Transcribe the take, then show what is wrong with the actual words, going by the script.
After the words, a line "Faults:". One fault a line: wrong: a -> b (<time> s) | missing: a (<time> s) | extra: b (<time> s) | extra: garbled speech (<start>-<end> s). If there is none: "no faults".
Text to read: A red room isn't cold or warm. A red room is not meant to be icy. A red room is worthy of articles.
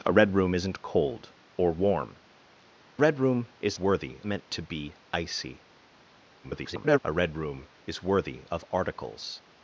A red room isn't cold or warm. Red room is worthy meant to be icy. [garbled] A red room is worthy of articles.
Faults:
missing: A (2.1 s)
wrong: not -> worthy (3.8 s)
extra: garbled speech (6.4-7.0 s)